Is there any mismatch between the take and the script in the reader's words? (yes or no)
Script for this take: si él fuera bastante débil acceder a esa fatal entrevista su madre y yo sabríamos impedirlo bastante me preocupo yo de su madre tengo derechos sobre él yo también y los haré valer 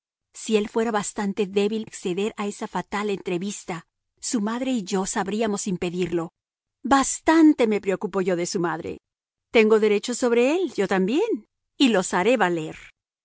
no